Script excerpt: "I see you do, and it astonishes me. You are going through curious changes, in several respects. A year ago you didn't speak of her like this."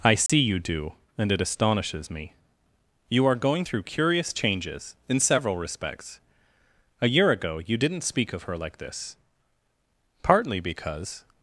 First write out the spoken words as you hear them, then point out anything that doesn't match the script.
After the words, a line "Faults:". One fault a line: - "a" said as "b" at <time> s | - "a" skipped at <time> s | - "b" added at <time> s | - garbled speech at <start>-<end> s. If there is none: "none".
"I see you do, and it astonishes me. You are going through curious changes, in several respects. A year ago you didn't speak of her like this." "Partly because
Faults:
- "Partly because" added at 10.2 s